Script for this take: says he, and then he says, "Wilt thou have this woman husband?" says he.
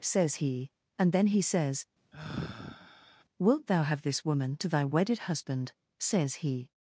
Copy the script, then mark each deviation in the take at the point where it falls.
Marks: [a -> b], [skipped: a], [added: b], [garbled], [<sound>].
says he, and then he says, [sigh] "Wilt thou have this woman [added: to thy wedded] husband?" says he.